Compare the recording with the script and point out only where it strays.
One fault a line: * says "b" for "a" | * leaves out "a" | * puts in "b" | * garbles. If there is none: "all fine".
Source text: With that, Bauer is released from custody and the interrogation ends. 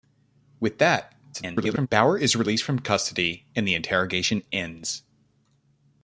* garbles